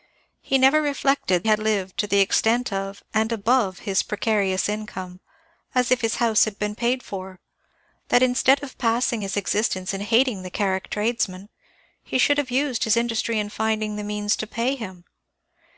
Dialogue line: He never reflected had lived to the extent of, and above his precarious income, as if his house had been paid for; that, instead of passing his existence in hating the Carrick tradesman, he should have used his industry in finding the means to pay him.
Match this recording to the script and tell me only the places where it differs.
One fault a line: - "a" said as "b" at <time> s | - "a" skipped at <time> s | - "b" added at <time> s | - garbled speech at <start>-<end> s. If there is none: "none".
none